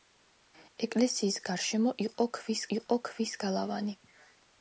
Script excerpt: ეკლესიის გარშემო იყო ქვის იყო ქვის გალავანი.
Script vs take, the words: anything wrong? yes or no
no